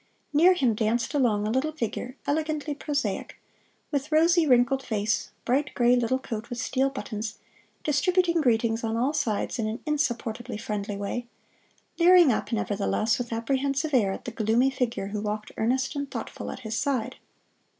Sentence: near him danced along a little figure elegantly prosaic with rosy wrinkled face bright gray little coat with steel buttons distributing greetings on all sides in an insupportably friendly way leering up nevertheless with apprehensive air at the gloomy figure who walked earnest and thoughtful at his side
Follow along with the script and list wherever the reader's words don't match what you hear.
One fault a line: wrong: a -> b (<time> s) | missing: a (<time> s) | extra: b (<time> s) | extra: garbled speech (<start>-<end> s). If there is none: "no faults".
no faults